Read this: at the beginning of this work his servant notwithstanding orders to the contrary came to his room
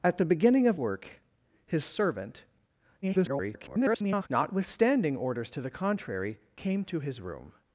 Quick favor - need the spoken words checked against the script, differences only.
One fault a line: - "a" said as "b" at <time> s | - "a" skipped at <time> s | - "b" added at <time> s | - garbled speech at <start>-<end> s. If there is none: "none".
- "this" skipped at 0.8 s
- garbled speech at 3.0-4.3 s